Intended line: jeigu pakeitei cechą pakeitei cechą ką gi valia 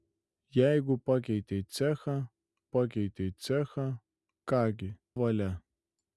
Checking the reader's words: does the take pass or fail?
pass